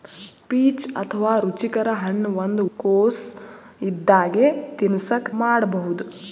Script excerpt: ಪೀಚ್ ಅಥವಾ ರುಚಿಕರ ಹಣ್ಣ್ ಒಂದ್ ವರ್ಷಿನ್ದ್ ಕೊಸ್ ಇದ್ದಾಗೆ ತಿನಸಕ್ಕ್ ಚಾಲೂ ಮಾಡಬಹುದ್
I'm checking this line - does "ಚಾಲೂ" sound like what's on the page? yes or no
no